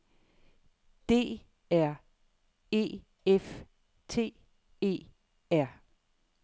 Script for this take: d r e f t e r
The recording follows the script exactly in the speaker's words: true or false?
true